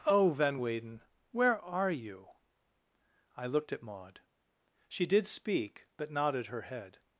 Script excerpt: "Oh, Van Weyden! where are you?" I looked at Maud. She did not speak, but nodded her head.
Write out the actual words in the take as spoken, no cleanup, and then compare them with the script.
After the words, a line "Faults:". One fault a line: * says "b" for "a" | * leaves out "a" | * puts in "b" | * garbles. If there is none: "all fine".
"Oh, Van Weyden! where are you?" I looked at Maud. She did speak, but nodded her head.
Faults:
* leaves out "not"